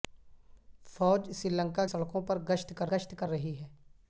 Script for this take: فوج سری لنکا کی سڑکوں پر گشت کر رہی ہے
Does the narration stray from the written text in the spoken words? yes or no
yes